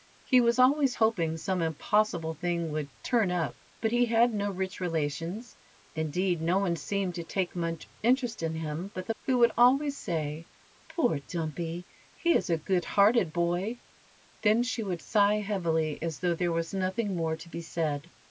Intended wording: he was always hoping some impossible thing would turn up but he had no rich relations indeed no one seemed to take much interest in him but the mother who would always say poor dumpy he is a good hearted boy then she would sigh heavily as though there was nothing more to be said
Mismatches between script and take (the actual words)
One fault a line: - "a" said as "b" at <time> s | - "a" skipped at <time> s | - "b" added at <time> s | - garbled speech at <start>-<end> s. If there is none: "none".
- "mother" skipped at 9.1 s